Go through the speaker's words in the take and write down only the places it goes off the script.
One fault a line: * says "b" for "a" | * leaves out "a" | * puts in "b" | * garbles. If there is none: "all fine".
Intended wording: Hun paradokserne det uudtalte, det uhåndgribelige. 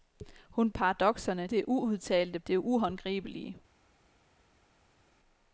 all fine